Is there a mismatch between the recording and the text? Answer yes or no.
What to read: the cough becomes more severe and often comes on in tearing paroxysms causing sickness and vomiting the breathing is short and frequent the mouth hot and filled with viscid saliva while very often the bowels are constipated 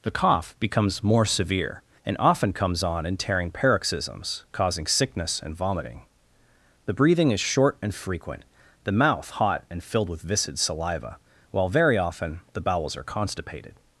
no